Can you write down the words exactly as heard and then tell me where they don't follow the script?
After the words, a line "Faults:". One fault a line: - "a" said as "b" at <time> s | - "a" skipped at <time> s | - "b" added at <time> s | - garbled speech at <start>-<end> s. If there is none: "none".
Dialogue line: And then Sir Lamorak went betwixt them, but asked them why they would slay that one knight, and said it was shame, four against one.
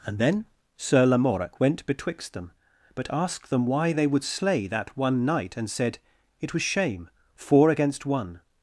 And then Sir Lamorak went betwixt them, but asked them why they would slay that one knight, and said it was shame, four against one.
Faults:
none